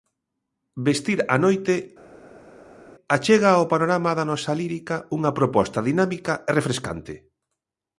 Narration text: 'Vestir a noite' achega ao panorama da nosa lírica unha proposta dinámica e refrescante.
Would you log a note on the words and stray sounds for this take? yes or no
no